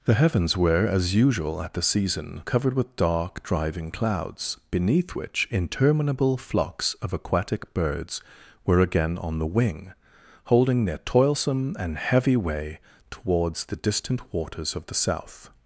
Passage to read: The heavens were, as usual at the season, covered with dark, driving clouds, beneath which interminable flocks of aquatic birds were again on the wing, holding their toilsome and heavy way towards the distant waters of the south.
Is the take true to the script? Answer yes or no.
yes